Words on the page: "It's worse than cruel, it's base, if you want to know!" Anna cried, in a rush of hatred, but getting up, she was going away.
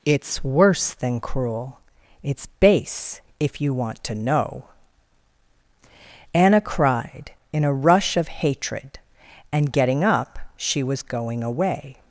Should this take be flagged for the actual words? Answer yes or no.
yes